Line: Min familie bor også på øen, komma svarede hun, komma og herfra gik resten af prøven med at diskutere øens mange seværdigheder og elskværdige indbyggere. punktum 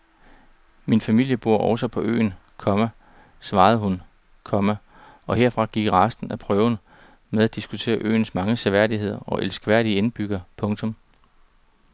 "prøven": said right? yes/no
yes